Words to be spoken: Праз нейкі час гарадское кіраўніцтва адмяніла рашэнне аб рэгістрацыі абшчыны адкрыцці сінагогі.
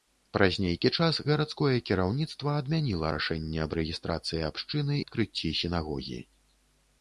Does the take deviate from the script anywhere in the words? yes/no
no